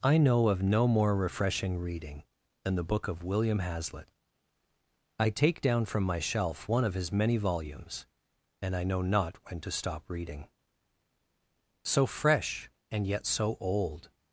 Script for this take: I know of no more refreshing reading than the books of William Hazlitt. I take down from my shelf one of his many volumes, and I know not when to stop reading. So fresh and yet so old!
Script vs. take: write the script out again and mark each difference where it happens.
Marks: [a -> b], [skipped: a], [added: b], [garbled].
I know of no more refreshing reading than the [books -> book] of William Hazlitt. I take down from my shelf one of his many volumes, and I know not when to stop reading. So fresh and yet so old!